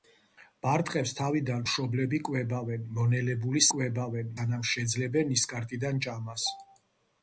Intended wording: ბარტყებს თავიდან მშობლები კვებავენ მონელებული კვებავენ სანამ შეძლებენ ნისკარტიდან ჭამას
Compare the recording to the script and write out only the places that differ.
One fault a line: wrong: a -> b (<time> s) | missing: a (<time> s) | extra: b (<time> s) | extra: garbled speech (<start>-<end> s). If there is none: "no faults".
no faults